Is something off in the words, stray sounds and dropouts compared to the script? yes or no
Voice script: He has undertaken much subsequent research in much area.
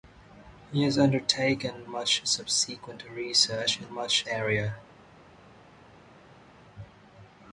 no